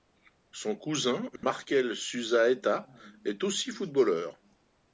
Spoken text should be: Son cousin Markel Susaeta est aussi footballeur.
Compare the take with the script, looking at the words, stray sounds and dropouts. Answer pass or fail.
fail